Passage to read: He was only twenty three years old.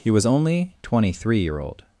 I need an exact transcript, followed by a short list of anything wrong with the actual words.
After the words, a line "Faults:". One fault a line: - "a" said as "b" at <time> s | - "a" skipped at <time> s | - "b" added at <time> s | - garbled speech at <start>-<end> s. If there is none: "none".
He was only twenty three year old.
Faults:
- "years" said as "year" at 1.4 s